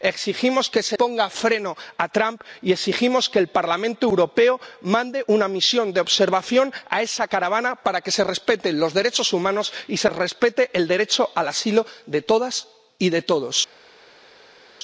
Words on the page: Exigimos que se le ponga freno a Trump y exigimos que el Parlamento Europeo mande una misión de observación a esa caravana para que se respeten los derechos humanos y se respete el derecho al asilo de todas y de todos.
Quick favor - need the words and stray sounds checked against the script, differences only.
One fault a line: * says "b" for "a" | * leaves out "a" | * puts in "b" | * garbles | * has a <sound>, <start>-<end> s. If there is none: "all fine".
* leaves out "le"